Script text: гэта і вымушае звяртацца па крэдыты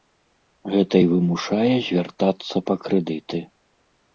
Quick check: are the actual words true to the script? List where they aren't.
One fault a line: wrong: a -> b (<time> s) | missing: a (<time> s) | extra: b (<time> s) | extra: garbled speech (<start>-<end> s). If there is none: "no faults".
no faults